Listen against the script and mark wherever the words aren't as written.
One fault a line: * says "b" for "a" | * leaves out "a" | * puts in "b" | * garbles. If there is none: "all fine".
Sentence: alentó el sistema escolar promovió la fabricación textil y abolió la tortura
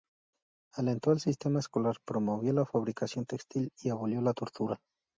all fine